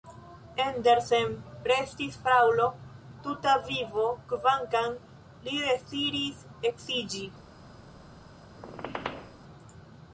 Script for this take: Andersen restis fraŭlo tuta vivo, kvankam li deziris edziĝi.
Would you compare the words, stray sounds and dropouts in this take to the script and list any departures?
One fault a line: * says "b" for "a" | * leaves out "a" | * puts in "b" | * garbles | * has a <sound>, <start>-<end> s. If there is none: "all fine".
* has a squeak, 8.5-9.4 s